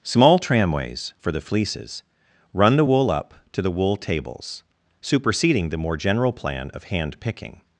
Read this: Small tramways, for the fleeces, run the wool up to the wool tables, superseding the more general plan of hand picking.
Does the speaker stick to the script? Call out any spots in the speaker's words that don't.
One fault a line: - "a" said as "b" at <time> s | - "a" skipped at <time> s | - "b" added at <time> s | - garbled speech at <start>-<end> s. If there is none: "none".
none